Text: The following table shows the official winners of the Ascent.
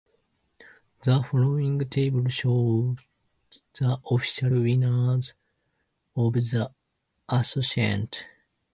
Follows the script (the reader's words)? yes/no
yes